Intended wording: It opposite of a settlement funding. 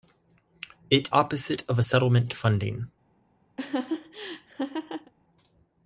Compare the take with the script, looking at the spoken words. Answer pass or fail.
pass